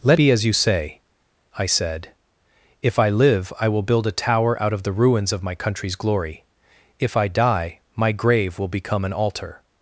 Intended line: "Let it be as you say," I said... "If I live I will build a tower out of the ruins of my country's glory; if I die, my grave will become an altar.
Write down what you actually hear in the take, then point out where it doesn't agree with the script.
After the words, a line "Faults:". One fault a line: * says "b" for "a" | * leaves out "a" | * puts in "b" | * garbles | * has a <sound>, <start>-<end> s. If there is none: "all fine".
"Let be as you say," I said... "If I live I will build a tower out of the ruins of my country's glory; if I die, my grave will become an altar.
Faults:
* leaves out "it"